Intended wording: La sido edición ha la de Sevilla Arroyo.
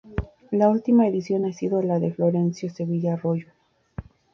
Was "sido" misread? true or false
true